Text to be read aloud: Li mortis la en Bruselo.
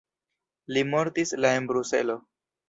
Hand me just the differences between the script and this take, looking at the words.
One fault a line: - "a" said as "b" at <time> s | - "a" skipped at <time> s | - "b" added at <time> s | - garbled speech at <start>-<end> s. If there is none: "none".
none